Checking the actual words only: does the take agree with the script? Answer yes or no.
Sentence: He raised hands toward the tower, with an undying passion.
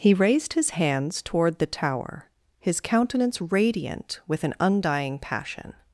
no